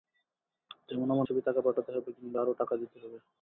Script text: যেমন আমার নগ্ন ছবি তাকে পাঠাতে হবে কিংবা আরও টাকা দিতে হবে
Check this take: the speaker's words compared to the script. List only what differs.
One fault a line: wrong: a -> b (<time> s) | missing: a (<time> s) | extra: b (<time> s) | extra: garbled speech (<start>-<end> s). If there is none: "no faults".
missing: নগ্ন (1.3 s)